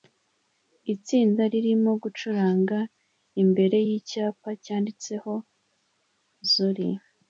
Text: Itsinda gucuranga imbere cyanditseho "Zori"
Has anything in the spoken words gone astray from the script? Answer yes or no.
yes